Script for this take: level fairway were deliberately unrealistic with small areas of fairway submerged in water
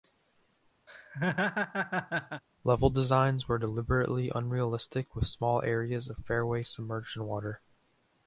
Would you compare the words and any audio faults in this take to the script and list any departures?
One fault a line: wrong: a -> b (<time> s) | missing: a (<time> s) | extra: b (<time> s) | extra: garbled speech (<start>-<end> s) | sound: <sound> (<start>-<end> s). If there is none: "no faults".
sound: laugh (0.9-2.4 s)
wrong: fairway -> designs (2.9 s)